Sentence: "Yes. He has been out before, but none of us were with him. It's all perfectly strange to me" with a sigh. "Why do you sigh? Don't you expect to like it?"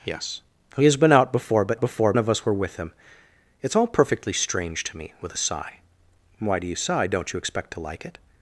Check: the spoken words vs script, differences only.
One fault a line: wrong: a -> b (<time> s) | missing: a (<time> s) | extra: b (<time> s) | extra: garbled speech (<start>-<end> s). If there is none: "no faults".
wrong: none -> before (1.8 s)